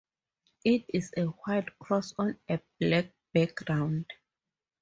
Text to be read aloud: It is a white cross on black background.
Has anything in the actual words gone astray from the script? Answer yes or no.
yes